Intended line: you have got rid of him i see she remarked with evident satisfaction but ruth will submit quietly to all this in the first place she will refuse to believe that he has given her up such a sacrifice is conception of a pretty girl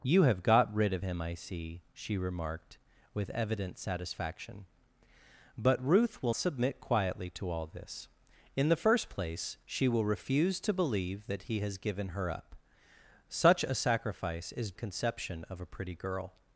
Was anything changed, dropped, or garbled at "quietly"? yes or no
no